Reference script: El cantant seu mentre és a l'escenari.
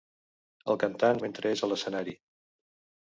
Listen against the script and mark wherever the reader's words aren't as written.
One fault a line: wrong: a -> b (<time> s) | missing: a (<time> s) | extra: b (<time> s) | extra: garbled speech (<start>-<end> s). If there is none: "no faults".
missing: seu (1.2 s)